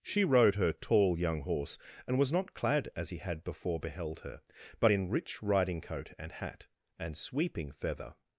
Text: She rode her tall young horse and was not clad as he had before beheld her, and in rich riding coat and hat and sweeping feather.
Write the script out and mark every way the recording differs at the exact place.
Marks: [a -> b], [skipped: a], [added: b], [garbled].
She rode her tall young horse and was not clad as he had before beheld her, [and -> but] in rich riding coat and hat and sweeping feather.